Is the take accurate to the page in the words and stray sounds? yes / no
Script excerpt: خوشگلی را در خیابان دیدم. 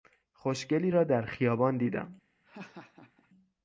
no